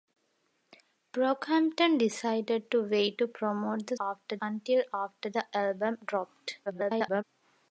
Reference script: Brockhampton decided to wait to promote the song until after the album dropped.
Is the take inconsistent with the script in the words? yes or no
yes